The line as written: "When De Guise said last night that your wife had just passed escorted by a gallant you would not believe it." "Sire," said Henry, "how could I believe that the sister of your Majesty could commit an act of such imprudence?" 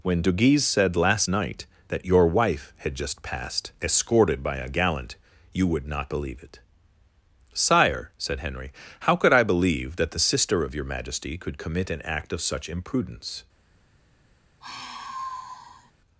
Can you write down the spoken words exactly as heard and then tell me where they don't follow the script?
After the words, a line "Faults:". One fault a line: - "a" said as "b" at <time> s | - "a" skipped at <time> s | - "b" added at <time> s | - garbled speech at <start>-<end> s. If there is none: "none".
"When De Guise said last night that your wife had just passed escorted by a gallant you would not believe it." "Sire," said Henry, "how could I believe that the sister of your Majesty could commit an act of such imprudence?"
Faults:
none